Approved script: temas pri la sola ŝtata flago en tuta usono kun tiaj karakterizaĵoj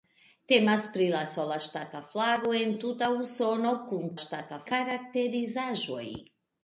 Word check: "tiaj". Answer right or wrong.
wrong